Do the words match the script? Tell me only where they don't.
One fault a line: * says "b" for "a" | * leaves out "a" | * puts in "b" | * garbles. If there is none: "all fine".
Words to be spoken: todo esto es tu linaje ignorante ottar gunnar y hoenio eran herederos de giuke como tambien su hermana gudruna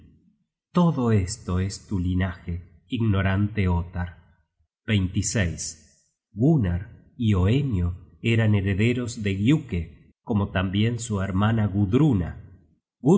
all fine